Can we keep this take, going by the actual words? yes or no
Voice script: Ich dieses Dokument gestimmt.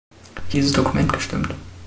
yes